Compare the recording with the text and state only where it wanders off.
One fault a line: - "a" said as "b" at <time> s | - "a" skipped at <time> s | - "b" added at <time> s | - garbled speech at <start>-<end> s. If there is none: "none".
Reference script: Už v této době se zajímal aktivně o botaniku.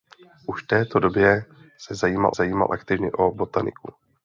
- "zajímal" added at 2.3 s